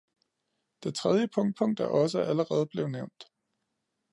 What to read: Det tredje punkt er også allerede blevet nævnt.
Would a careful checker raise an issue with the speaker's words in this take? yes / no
yes